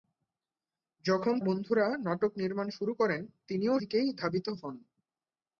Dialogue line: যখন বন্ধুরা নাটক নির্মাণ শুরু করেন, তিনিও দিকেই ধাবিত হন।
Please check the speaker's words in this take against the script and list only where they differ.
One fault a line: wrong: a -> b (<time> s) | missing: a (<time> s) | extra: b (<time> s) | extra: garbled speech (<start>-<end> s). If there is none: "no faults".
no faults